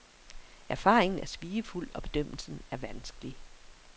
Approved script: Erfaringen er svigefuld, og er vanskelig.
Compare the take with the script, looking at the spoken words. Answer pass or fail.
fail